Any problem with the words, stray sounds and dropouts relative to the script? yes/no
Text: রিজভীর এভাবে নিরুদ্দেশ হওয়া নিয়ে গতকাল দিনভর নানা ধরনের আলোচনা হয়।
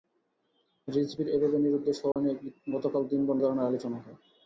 yes